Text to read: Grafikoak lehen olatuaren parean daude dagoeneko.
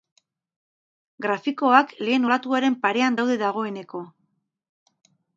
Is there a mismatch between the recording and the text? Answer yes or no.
no